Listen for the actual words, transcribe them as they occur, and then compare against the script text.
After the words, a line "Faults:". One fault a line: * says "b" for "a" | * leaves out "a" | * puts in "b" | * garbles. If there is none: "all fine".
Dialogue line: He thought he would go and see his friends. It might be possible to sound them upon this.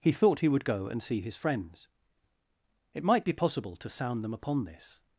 He thought he would go and see his friends. It might be possible to sound them upon this.
Faults:
all fine